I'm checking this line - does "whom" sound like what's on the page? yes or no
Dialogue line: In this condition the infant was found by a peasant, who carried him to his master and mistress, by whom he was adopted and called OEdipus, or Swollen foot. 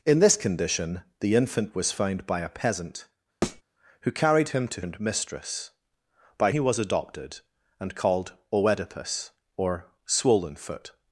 no